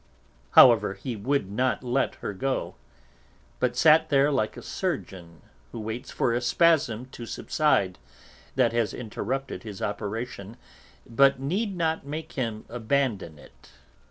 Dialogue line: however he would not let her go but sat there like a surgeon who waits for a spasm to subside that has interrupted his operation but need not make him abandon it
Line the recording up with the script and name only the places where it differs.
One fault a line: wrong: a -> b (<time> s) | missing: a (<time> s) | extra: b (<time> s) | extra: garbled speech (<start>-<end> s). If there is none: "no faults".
no faults